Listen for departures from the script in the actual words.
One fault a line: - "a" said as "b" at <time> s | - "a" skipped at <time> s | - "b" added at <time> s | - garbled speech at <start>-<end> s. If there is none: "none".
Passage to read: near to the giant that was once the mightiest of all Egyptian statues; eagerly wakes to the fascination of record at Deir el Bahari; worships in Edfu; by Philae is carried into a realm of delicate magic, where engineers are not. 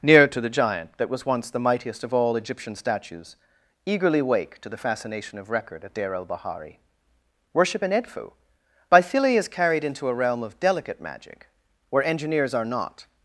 - "wakes" said as "wake" at 4.2 s
- "worships" said as "worship" at 7.5 s